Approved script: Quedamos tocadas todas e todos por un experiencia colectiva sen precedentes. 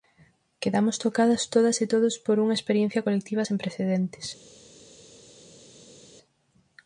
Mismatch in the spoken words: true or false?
true